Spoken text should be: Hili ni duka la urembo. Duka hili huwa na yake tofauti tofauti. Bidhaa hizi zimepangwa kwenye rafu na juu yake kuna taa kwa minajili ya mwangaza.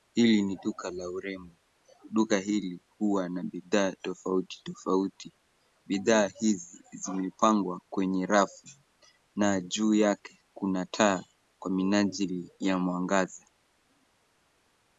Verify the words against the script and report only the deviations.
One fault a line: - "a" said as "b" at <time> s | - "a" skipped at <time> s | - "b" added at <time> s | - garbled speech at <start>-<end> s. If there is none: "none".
- "yake" said as "bidhaa" at 3.4 s